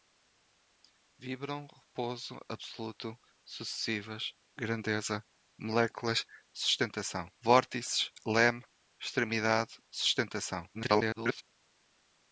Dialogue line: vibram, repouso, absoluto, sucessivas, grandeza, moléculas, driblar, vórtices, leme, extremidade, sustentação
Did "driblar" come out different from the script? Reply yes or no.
yes